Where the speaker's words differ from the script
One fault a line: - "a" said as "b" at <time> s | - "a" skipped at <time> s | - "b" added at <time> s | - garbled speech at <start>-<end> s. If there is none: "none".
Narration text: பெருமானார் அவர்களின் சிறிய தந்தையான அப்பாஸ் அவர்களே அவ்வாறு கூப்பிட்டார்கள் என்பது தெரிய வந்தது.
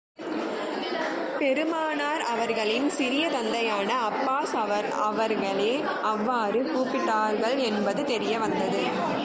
none